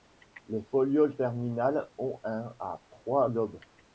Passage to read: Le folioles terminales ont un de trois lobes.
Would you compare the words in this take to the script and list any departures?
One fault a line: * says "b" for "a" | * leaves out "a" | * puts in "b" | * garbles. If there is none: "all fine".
* says "Les" for "Le"
* says "à" for "de"